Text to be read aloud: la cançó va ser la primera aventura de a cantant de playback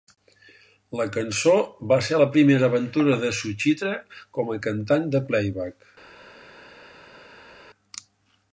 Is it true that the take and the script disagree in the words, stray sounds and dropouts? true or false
true